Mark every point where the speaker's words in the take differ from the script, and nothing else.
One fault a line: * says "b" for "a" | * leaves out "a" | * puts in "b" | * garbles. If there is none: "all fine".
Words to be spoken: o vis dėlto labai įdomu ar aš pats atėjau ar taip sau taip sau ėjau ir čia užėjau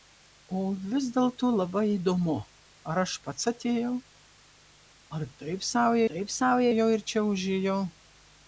all fine